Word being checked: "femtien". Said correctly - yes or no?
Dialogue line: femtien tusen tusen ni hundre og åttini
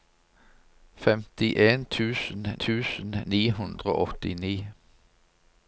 yes